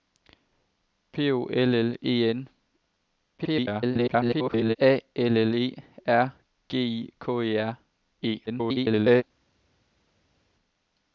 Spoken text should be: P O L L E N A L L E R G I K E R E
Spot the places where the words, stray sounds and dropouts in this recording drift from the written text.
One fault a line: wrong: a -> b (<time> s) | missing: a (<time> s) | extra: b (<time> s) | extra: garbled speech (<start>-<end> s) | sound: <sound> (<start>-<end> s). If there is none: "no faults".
extra: garbled speech (3.4-4.8 s)
extra: garbled speech (8.5-9.2 s)